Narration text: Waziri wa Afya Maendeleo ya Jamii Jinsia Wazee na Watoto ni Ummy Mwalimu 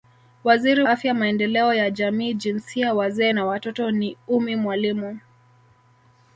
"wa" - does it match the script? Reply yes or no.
no